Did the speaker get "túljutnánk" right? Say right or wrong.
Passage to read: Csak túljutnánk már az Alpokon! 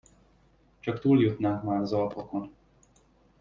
right